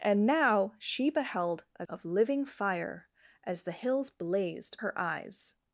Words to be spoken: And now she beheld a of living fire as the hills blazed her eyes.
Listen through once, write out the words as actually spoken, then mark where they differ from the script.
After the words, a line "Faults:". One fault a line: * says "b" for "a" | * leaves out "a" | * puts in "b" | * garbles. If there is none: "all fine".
And now she beheld a of living fire as the hills blazed her eyes.
Faults:
all fine